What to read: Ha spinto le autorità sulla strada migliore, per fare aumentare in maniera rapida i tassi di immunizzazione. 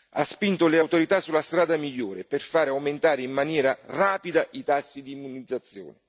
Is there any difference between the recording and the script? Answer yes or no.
no